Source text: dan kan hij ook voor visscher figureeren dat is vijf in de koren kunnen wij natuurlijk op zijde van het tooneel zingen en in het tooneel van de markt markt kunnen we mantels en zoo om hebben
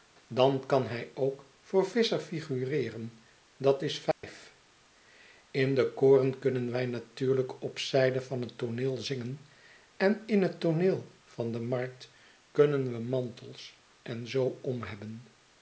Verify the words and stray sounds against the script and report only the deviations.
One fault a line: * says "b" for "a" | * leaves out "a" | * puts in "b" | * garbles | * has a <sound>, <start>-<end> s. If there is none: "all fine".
* has a dropout, 4.1-4.2 s
* leaves out "markt"